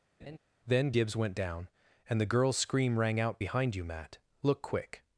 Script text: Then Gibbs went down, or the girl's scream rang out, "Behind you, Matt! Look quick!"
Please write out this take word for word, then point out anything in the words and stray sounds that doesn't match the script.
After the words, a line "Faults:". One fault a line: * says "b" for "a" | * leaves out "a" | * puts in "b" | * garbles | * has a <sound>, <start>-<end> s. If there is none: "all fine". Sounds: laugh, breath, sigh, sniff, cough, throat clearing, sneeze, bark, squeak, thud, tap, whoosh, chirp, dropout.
Then Gibbs went down, and the girl's scream rang out, "Behind you, Matt! Look quick!"
Faults:
* has a laugh, 0.2-0.4 s
* says "and" for "or"